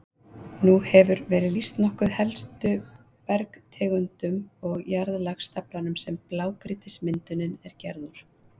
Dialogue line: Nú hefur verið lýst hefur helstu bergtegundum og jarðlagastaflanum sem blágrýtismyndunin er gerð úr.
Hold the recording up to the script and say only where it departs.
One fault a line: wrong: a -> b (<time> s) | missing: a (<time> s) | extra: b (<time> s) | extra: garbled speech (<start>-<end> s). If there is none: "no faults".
wrong: hefur -> nokkuð (1.8 s)